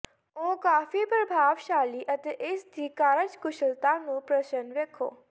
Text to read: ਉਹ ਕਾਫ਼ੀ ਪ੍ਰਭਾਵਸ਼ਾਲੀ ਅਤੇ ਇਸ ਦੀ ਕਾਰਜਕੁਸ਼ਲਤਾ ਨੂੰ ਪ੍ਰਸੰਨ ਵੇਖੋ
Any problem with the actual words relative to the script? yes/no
no